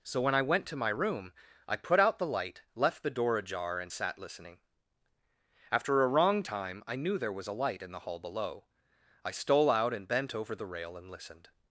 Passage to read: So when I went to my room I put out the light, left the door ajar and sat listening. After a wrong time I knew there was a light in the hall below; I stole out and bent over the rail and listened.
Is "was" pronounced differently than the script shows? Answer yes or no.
no